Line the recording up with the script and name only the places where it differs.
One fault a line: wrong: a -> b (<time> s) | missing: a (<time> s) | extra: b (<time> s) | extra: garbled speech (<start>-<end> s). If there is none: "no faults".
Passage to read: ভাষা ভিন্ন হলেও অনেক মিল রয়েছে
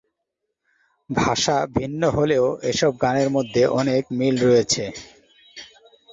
extra: এসব গানের মধ্যে (2.7 s)